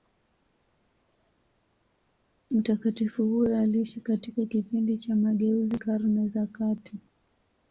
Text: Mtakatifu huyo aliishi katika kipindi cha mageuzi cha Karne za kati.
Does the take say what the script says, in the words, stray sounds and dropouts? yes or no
no